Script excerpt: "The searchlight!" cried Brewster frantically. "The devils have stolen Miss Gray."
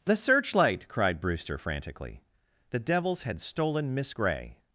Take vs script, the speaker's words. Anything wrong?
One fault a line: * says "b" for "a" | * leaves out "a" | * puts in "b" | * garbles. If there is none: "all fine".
* says "had" for "have"